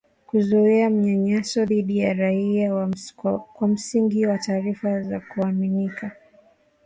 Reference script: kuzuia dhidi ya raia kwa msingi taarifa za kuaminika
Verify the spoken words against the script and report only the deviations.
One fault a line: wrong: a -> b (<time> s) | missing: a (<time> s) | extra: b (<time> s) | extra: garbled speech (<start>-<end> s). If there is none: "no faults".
extra: manyanyaso (0.9 s)
extra: wa (4.2 s)